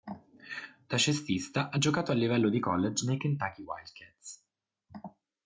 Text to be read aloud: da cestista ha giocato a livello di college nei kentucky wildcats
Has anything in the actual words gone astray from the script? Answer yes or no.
no